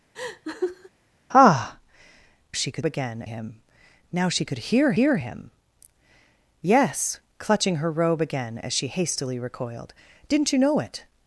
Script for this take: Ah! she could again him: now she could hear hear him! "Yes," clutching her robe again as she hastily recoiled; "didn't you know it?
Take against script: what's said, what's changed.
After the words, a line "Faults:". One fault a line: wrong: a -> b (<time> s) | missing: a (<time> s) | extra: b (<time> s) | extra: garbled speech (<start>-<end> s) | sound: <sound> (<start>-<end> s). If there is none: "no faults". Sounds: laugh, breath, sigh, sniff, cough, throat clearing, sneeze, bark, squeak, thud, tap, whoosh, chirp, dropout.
Ah! she could again him: now she could hear hear him! "Yes," clutching her robe again as she hastily recoiled; "didn't you know it?
Faults:
sound: laugh (0.1-0.9 s)